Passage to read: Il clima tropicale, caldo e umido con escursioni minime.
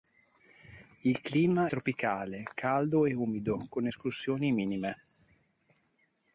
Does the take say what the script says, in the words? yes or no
yes